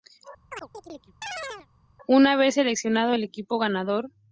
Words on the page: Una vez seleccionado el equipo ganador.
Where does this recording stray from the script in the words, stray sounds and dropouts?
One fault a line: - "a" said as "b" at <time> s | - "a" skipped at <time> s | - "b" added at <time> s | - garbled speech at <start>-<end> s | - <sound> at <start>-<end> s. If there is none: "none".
- chirp at 0.5-1.7 s